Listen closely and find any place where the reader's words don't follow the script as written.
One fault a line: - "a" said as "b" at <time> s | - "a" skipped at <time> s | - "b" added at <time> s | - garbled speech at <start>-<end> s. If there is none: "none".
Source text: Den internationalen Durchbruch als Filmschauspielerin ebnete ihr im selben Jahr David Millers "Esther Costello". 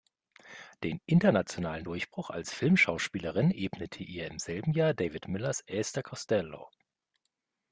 none